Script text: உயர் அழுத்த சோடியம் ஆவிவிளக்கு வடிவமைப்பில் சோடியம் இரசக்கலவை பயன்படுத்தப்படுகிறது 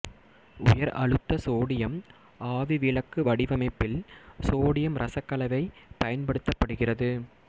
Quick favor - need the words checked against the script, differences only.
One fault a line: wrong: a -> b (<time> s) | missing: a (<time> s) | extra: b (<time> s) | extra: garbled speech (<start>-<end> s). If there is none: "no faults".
no faults